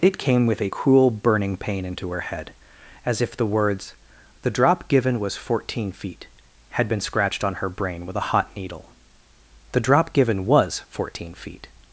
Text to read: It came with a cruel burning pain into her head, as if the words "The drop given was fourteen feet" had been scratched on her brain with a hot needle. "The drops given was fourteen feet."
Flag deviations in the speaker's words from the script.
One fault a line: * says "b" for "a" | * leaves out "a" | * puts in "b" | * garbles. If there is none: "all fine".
* says "drop" for "drops"